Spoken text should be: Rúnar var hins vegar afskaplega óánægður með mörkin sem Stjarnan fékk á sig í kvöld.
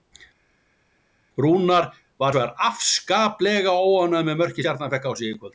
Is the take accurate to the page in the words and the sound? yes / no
no